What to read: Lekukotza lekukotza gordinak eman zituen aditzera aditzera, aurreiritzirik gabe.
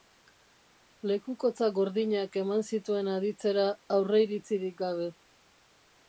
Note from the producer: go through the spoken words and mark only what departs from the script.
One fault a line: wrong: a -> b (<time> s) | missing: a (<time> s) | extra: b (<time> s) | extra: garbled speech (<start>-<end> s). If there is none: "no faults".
missing: lekukotza (1.7 s)
missing: aditzera (3.6 s)